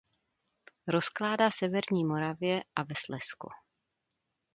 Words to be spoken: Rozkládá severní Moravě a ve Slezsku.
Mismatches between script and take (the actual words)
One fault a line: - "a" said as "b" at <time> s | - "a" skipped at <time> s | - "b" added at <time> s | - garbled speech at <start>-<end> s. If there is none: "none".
none